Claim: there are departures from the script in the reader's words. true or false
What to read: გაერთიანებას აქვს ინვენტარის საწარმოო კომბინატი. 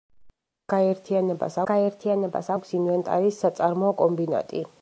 true